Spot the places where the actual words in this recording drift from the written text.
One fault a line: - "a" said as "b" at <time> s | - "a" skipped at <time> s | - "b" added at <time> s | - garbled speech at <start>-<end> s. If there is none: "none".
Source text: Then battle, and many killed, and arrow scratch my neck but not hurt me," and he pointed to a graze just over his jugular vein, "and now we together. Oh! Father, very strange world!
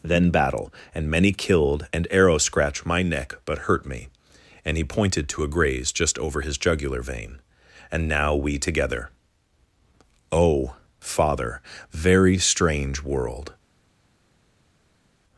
- "not" skipped at 3.6 s